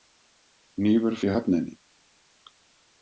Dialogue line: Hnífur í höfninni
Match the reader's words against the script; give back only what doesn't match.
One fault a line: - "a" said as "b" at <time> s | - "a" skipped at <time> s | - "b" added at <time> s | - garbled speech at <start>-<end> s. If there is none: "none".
none